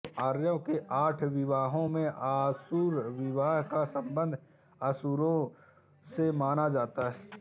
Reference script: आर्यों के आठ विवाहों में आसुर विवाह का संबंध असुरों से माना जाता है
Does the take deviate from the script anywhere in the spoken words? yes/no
no